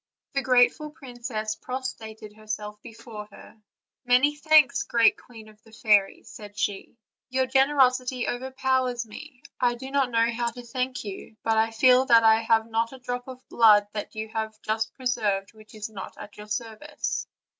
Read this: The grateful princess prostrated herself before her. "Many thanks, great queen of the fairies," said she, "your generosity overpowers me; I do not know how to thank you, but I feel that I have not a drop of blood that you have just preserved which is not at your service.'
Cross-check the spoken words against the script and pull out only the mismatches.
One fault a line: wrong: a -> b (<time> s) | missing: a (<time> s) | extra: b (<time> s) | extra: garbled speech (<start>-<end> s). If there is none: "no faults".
no faults